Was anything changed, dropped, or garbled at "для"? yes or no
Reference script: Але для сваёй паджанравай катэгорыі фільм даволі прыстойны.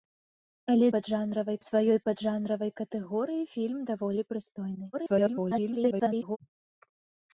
yes